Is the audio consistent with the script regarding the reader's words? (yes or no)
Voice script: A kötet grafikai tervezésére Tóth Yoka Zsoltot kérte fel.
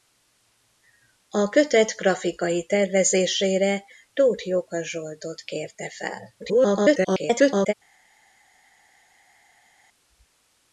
no